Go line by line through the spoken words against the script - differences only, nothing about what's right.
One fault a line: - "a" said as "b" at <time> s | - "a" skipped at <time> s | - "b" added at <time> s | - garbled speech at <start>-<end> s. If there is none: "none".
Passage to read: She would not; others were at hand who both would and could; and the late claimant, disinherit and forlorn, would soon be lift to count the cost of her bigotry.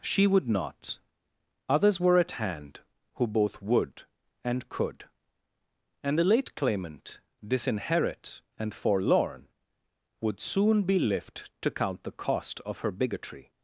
none